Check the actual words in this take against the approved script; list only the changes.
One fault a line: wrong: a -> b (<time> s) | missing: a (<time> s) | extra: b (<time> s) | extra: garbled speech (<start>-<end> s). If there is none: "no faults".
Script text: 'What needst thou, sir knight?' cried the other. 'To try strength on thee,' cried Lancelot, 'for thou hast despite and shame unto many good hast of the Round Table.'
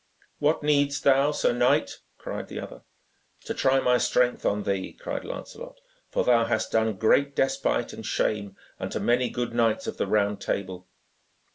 extra: my (3.8 s)
extra: done great (6.7 s)
wrong: hast -> knights (9.5 s)